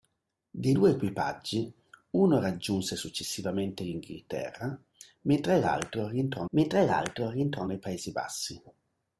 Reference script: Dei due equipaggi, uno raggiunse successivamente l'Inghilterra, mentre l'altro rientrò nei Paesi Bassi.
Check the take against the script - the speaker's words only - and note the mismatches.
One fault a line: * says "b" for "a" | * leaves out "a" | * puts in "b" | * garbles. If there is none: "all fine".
* puts in "mentre l'altro rientrò"